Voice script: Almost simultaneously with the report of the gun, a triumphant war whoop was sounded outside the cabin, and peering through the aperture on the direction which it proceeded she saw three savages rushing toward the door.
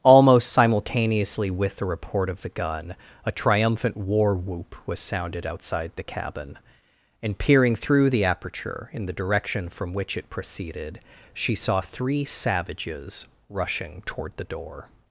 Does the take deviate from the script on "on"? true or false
true